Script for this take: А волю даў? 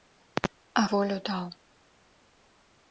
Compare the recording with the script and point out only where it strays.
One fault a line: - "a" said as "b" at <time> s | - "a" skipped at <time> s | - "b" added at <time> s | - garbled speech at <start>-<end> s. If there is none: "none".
none